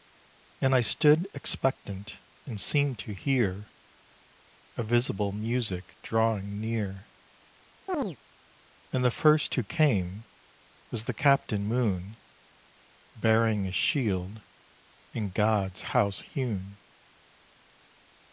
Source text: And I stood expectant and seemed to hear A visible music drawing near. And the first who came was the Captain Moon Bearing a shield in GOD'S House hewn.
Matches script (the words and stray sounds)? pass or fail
fail